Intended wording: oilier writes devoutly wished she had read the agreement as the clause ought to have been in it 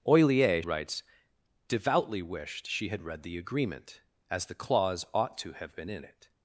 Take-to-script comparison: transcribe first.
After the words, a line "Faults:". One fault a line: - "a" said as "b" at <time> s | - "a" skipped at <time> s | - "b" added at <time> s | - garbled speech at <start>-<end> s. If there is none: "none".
oilier writes devoutly wished she had read the agreement as the clause ought to have been in it
Faults:
none